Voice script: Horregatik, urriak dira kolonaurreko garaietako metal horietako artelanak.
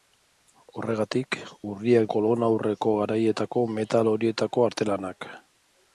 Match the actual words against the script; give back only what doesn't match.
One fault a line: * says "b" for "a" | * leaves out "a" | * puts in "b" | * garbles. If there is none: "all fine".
* leaves out "dira"